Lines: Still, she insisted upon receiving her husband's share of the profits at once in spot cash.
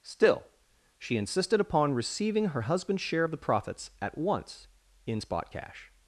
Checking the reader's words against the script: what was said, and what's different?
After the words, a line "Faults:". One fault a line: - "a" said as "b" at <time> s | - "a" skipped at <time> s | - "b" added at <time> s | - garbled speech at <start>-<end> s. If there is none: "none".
Still, she insisted upon receiving her husband's share of the profits at once in spot cash.
Faults:
none